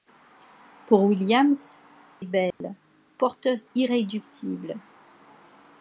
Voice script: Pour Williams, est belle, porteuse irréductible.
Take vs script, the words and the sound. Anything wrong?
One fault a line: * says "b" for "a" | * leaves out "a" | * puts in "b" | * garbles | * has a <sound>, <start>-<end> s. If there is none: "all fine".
* has a dropout, 2.5-2.6 s